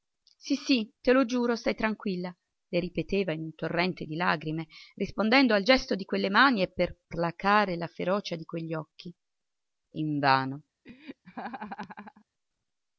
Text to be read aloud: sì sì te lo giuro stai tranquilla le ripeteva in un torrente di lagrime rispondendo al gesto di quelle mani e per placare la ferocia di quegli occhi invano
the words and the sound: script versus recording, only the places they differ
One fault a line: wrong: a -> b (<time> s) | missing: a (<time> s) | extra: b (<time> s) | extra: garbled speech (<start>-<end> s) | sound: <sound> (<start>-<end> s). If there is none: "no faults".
sound: laugh (10.8-12.3 s)